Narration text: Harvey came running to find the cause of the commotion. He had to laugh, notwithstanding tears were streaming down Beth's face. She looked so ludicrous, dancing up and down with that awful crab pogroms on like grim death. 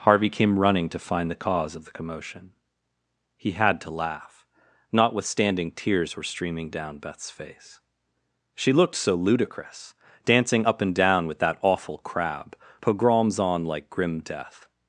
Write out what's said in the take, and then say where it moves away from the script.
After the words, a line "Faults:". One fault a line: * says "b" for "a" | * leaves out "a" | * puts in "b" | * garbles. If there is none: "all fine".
Harvey came running to find the cause of the commotion. He had to laugh, notwithstanding tears were streaming down Beth's face. She looked so ludicrous, dancing up and down with that awful crab pogroms on like grim death.
Faults:
all fine